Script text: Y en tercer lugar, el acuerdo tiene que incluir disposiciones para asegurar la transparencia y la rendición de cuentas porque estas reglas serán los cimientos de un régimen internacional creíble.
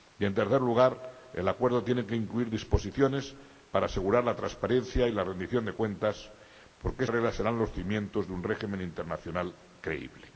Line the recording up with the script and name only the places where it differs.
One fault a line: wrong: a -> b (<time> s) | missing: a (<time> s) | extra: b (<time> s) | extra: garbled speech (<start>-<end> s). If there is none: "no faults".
missing: estas (7.0 s)